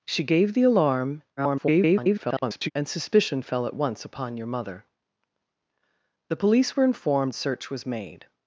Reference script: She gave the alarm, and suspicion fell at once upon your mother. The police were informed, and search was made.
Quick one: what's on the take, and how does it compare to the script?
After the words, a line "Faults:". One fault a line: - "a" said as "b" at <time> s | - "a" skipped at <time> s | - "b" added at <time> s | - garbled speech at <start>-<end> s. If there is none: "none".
She gave the alarm, [garbled] and suspicion fell at once upon your mother. The police were informed, search was made.
Faults:
- garbled speech at 1.4-2.7 s
- "and" skipped at 7.4 s